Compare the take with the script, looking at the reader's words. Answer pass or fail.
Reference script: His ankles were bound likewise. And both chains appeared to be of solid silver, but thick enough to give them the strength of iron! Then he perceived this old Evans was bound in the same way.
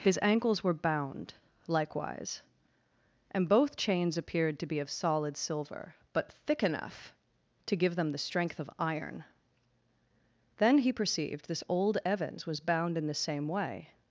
pass